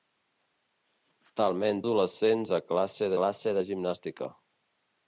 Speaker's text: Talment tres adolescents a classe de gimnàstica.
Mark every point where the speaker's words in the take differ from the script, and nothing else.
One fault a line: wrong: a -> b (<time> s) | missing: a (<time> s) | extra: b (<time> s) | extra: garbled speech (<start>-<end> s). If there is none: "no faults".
missing: tres (1.8 s)
extra: classe (3.2 s)